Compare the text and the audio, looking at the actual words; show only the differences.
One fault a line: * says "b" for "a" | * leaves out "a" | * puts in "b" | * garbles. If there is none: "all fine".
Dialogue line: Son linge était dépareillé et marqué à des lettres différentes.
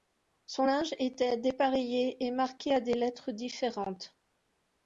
all fine